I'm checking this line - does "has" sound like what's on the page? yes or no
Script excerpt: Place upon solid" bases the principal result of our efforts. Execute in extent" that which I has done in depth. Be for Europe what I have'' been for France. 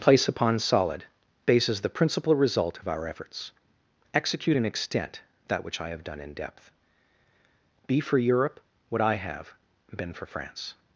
no